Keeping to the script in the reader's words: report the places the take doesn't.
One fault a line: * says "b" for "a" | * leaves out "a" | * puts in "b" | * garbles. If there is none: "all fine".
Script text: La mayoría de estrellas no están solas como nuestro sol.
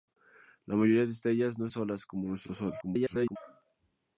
* leaves out "están"
* garbles